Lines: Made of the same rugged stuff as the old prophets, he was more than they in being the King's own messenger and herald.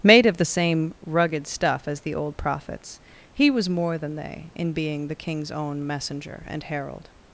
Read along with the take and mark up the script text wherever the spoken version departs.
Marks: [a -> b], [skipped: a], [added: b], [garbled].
Made of the same rugged stuff as the old prophets, he was more than they in being the King's own messenger and herald.